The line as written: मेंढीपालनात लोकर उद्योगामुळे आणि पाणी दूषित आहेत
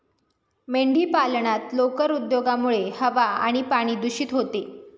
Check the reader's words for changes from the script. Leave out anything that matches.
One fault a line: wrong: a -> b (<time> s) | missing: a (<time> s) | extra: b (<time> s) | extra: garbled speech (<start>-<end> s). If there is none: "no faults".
extra: हवा (3.0 s)
wrong: आहेत -> होते (4.3 s)